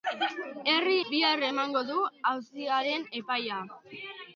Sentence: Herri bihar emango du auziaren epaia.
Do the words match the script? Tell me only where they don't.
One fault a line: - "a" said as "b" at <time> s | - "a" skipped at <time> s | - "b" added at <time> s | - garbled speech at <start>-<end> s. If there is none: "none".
none